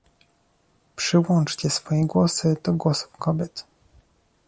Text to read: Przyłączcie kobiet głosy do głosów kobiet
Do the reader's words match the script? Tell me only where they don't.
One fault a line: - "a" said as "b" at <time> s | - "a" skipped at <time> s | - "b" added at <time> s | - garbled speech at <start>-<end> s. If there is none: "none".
- "kobiet" said as "swoje" at 1.7 s